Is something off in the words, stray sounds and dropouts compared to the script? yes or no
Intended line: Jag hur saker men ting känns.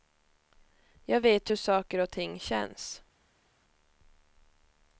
yes